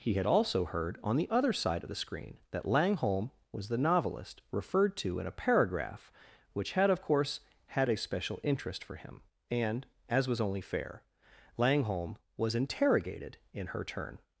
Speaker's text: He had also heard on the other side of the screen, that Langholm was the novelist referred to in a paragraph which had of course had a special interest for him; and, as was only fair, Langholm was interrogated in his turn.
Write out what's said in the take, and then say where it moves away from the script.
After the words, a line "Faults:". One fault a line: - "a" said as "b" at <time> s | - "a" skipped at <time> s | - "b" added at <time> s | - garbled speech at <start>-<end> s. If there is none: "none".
He had also heard on the other side of the screen, that Langholm was the novelist referred to in a paragraph which had of course had a special interest for him; and, as was only fair, Langholm was interrogated in her turn.
Faults:
- "his" said as "her" at 13.7 s